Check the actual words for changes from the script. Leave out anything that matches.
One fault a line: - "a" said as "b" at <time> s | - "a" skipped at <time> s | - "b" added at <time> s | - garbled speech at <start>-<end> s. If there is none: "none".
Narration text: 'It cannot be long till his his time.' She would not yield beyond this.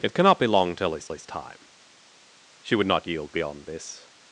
none